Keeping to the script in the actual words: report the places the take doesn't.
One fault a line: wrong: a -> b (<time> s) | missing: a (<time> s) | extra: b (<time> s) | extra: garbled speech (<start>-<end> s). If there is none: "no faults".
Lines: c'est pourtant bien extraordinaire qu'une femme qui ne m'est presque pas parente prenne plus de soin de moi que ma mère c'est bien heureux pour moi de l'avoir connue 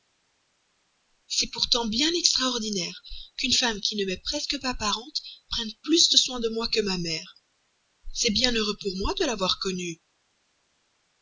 no faults